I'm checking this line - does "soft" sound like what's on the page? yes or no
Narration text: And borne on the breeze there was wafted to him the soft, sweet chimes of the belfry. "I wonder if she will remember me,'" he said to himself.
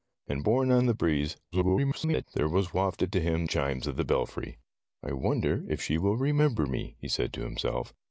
no